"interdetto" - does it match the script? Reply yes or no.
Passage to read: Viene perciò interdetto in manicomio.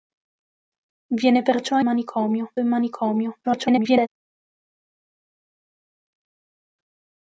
no